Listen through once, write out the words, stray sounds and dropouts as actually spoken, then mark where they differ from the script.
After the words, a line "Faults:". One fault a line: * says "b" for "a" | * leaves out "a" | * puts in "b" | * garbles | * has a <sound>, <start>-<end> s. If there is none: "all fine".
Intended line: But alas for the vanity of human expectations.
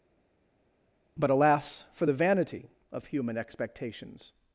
But alas for the vanity of human expectations.
Faults:
all fine